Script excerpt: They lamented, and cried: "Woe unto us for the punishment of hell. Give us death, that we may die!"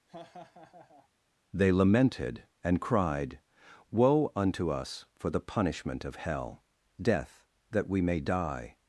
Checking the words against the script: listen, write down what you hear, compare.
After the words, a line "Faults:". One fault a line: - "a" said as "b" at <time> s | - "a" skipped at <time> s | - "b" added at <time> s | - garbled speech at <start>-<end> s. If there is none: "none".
They lamented, and cried: "Woe unto us for the punishment of hell. Death, that we may die!"
Faults:
- "Give us" skipped at 6.6 s